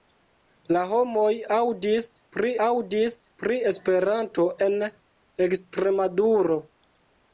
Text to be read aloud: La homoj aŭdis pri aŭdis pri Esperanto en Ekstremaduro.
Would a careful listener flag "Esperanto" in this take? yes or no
no